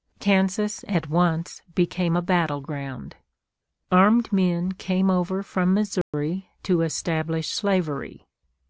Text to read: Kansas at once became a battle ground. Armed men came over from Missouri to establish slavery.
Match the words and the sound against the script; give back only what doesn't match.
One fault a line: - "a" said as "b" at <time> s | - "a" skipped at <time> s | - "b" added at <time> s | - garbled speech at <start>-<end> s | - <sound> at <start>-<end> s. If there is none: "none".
- dropout at 6.0-6.1 s